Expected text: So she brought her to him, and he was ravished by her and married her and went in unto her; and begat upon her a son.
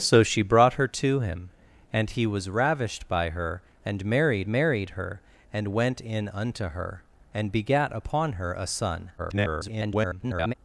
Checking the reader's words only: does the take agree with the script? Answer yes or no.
no